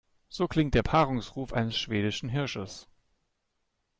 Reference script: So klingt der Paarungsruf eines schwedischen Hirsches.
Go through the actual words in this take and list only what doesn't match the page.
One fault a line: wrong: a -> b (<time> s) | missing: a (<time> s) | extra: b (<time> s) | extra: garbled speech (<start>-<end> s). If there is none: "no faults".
no faults